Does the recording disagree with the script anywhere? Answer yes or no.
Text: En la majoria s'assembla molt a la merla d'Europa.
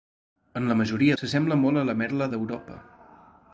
no